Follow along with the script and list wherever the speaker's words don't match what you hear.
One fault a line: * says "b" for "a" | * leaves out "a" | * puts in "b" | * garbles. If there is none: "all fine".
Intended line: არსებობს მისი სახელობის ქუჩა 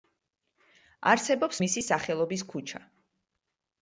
all fine